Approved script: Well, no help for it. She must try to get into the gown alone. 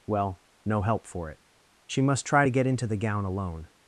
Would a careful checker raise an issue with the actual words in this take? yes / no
no